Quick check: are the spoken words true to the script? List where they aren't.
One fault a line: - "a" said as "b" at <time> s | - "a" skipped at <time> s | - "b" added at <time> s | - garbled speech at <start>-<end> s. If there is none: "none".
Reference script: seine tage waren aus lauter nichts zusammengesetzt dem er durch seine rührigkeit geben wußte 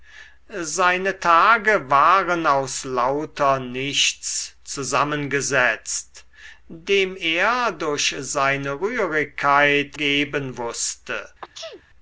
none